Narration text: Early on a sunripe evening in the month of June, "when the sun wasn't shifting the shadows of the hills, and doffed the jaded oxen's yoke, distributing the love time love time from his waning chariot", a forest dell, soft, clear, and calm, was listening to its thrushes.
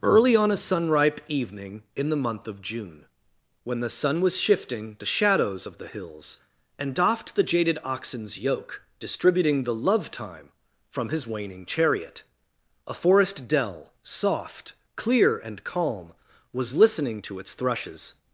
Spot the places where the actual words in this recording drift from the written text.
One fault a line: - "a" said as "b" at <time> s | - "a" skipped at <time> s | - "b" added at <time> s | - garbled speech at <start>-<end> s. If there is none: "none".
- "wasn't" said as "was" at 4.2 s
- "love time" skipped at 10.5 s